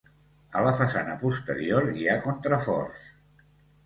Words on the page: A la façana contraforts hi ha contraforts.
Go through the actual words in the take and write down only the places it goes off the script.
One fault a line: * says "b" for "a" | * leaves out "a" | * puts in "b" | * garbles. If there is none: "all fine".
* says "posterior" for "contraforts"